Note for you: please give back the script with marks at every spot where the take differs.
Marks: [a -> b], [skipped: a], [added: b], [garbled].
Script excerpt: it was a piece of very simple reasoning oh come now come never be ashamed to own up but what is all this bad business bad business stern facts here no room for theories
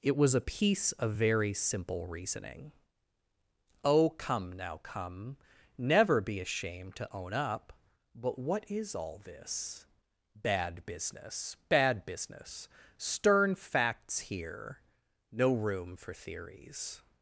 it was a piece of very simple reasoning oh come now come never be ashamed to own up but what is all this bad business bad business stern facts here no room for theories